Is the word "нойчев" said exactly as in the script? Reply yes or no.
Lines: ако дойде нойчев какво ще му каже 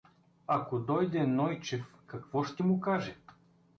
yes